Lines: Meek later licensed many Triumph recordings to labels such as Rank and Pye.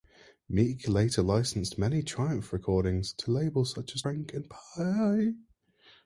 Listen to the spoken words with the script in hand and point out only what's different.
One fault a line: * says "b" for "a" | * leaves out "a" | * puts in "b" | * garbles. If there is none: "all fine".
all fine